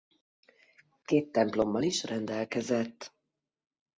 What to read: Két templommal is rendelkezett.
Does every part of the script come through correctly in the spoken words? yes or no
yes